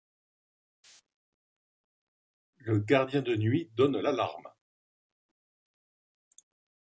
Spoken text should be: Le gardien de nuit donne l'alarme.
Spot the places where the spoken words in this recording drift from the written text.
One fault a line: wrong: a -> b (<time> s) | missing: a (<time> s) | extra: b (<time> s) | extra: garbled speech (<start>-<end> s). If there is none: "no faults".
no faults